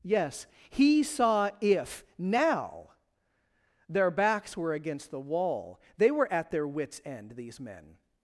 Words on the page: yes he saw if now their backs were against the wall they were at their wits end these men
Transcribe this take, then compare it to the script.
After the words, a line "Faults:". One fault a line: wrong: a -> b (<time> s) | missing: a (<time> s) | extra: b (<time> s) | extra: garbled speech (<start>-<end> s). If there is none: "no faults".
yes he saw if now their backs were against the wall they were at their wits end these men
Faults:
no faults